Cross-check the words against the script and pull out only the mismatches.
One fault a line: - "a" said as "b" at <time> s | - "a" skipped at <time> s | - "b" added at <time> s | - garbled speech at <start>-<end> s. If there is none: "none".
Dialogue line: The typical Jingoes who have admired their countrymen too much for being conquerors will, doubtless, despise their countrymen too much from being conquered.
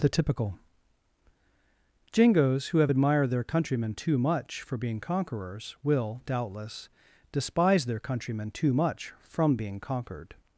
none